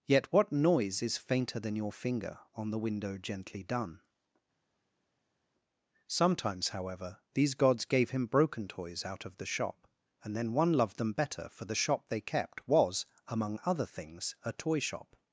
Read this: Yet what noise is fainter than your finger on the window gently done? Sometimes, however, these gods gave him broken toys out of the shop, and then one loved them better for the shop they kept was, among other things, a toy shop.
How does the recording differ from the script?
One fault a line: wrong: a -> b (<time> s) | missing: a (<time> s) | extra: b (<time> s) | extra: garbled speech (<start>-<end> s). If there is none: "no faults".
no faults